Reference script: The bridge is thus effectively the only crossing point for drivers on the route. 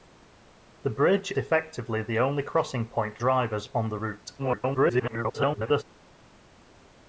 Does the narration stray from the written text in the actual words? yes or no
yes